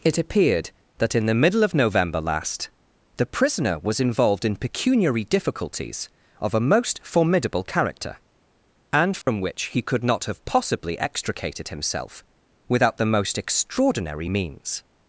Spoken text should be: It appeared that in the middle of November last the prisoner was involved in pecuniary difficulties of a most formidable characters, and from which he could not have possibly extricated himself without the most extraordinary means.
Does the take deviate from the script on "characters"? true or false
true